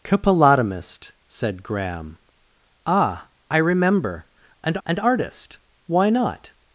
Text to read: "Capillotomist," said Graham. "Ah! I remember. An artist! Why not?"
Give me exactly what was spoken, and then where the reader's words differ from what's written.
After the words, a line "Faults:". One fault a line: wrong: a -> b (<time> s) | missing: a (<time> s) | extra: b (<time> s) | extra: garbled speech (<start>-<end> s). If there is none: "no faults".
"Capillotomist," said Graham. "Ah! I remember. An an artist! Why not?"
Faults:
extra: an (4.9 s)